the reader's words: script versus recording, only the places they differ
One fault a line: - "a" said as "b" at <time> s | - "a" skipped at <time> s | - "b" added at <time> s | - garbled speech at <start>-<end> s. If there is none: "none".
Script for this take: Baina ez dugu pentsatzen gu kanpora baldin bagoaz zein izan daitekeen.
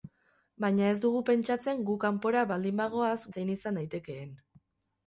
none